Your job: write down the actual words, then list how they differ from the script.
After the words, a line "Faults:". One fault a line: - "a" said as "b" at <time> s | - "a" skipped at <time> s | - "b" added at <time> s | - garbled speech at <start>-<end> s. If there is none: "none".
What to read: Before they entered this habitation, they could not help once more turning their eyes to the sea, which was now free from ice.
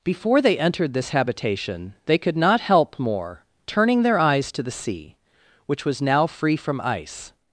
Before they entered this habitation, they could not help more turning their eyes to the sea, which was now free from ice.
Faults:
- "once" skipped at 3.0 s